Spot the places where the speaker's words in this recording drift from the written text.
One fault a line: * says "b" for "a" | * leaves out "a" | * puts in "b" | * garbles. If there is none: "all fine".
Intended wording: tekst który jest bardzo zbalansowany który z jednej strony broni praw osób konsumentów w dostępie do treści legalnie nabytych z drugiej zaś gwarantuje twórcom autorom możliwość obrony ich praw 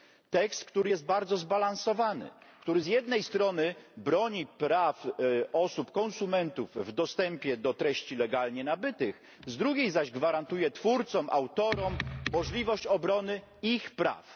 all fine